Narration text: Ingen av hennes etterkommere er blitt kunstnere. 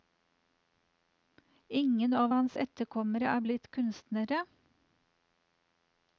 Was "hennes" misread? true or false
true